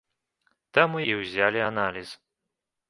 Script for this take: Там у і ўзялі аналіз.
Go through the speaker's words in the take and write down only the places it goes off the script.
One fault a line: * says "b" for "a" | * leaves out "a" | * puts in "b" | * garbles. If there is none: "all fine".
all fine